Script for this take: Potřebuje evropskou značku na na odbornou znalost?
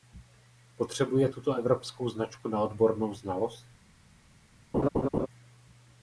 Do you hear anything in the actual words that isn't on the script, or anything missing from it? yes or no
yes